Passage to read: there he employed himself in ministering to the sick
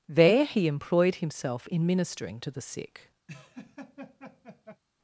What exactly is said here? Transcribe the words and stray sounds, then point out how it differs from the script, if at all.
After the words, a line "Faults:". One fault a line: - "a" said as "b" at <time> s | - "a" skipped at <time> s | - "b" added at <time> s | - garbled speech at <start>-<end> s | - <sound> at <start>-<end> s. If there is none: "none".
there he employed himself in ministering to the sick
Faults:
- laugh at 3.3-4.8 s